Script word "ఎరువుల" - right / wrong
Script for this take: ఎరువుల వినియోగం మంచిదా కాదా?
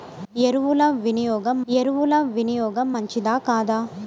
right